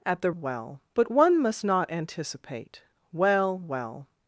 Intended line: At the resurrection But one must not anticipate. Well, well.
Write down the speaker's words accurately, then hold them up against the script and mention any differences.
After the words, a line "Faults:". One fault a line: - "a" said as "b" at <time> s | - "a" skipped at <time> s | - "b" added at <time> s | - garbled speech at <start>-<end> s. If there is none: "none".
At the well But one must not anticipate. Well, well.
Faults:
- "resurrection" said as "well" at 0.3 s